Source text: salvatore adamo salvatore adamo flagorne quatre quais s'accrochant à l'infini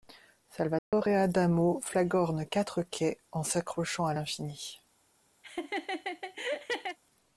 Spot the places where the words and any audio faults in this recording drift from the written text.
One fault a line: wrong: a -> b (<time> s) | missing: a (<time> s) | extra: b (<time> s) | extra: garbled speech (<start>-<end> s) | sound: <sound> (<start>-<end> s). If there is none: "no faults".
sound: dropout (0.8-0.9 s)
missing: salvatore adamo (1.8 s)
extra: en (3.3 s)
sound: laugh (5.4-7.0 s)